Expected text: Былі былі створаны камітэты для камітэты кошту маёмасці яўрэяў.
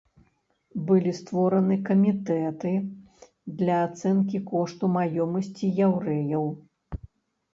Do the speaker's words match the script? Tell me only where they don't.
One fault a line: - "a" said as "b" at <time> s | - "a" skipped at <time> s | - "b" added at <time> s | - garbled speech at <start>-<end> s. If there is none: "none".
- "былі" skipped at 1.1 s
- "камітэты" said as "ацэнкі" at 3.9 s